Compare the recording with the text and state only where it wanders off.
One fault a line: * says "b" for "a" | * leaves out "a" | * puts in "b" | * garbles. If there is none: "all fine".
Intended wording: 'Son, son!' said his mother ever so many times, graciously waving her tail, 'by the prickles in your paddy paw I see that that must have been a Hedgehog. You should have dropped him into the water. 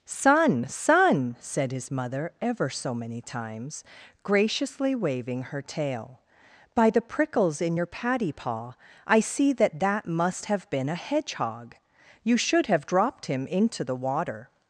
all fine